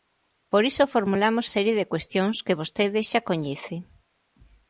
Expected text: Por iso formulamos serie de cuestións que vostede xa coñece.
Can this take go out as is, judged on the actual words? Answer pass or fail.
pass